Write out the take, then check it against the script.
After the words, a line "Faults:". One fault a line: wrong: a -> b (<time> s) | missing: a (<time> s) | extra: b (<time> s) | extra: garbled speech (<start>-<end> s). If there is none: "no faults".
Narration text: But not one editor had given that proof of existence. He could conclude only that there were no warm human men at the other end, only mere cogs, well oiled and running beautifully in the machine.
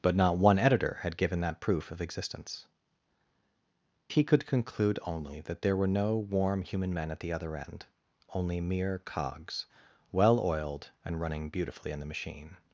But not one editor had given that proof of existence. He could conclude only that there were no warm human men at the other end, only mere cogs, well oiled and running beautifully in the machine.
Faults:
no faults